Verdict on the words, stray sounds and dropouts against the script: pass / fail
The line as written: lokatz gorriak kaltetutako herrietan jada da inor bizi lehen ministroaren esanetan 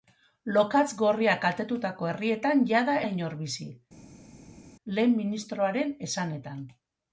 pass